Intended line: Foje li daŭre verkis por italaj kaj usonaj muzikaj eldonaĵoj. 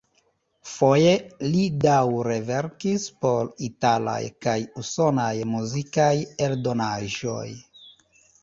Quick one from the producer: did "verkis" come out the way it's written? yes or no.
yes